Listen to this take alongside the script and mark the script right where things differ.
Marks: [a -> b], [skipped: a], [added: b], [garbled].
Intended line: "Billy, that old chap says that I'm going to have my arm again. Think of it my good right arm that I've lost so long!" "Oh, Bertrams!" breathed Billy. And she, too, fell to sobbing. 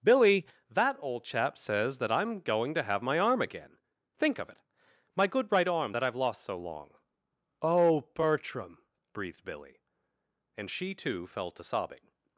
"Billy, that old chap says that I'm going to have my arm again. Think of it my good right arm that I've lost so long!" "Oh, [Bertrams!" -> Bertram] breathed Billy. And she, too, fell to sobbing.